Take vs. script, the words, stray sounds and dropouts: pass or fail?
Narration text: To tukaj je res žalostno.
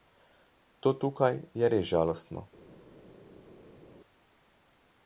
pass